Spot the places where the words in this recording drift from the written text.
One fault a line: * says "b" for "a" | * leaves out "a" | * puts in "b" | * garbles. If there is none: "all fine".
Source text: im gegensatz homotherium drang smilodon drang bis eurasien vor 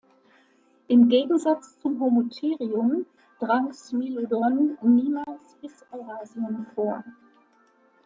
* puts in "zum"
* says "niemals" for "drang"